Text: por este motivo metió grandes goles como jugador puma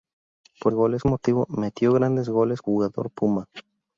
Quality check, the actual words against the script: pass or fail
fail